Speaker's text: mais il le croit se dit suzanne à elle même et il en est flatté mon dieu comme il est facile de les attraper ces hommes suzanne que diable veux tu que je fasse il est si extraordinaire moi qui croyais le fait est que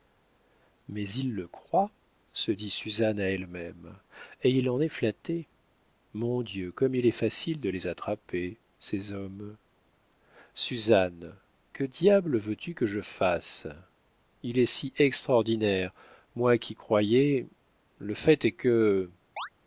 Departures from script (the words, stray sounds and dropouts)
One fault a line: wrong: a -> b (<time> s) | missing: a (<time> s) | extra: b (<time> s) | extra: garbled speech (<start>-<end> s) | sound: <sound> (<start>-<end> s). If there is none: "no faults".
sound: chirp (19.4-19.5 s)